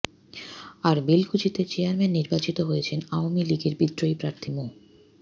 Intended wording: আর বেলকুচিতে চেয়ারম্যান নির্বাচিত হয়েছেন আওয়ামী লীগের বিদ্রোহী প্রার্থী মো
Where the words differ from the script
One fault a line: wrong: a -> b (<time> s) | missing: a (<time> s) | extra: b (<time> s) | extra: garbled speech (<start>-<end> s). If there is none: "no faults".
no faults